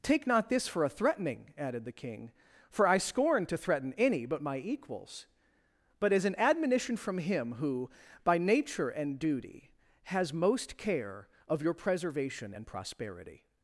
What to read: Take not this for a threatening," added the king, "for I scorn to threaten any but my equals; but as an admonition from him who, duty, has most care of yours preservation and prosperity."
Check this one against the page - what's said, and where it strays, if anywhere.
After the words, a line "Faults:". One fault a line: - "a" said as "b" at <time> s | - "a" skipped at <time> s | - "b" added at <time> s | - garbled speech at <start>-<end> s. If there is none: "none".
Take not this for a threatening," added the king, "for I scorn to threaten any but my equals; but as an admonition from him who, by nature and duty, has most care of your preservation and prosperity."
Faults:
- "by nature and" added at 8.2 s
- "yours" said as "your" at 11.6 s